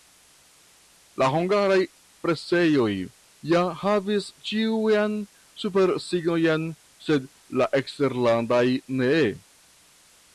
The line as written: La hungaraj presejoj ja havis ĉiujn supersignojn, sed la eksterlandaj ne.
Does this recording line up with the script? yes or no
yes